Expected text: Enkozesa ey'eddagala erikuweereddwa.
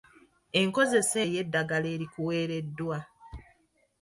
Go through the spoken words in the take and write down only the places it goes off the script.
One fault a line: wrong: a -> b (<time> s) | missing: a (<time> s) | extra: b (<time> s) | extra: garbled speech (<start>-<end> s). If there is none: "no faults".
no faults